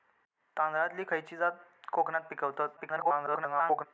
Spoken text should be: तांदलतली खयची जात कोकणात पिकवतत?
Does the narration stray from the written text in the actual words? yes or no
yes